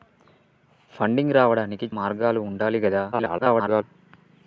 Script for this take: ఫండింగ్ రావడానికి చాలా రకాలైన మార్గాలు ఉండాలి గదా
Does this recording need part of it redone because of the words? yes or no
yes